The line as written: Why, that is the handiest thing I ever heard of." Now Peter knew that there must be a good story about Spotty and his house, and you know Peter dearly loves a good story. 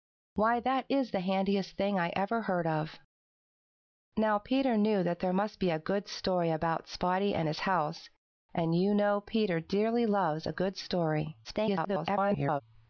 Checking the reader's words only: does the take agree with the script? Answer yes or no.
no